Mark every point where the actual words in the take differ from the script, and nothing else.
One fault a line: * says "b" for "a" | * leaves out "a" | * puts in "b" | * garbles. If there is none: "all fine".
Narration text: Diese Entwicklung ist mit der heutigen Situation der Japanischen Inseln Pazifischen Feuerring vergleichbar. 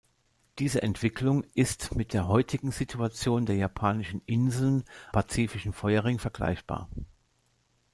all fine